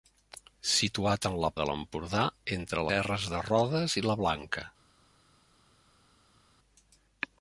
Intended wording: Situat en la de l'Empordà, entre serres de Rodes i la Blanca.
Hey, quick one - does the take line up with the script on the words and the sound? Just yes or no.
yes